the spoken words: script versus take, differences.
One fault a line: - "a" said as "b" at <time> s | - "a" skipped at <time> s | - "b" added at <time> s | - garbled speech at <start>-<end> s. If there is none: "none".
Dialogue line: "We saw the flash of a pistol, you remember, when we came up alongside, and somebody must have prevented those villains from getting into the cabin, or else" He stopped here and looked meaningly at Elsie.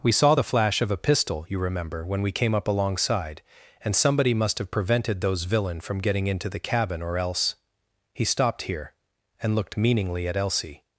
- "villains" said as "villain" at 5.4 s